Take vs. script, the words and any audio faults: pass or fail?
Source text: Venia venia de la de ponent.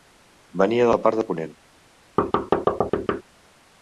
fail